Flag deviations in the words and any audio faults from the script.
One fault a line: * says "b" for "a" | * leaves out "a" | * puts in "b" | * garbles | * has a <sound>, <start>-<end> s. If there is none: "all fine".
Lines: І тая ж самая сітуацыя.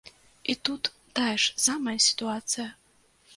* puts in "тут"